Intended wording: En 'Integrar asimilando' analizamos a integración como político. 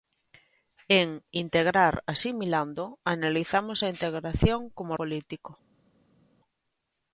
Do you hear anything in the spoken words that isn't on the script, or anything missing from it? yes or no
no